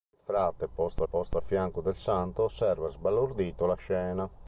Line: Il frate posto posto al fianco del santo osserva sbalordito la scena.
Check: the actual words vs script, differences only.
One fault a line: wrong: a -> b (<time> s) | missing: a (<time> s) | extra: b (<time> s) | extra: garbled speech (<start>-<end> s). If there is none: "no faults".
no faults